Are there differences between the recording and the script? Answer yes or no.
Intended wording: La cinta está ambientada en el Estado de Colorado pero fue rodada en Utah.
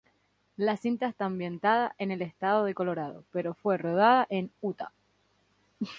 no